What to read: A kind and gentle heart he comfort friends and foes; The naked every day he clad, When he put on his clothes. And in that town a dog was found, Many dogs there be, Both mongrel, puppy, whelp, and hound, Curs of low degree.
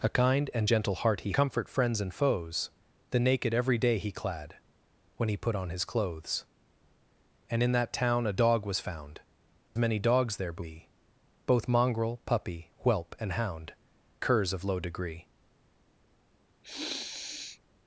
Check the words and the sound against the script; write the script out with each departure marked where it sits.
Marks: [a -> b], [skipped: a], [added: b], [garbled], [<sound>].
A kind and gentle heart he comfort friends and foes; The naked every day he clad, When he put on his clothes. And in that town a dog was found, Many dogs there be, Both mongrel, puppy, whelp, and hound, Curs of low degree. [sniff]